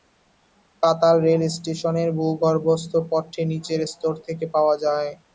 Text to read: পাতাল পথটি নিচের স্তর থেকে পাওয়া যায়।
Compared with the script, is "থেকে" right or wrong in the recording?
right